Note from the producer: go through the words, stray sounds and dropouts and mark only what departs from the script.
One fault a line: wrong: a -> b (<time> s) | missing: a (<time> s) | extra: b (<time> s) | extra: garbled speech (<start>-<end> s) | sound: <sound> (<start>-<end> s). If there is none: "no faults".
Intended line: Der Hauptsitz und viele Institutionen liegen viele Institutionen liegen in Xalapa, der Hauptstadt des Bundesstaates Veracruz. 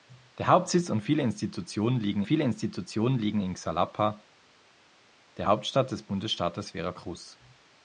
no faults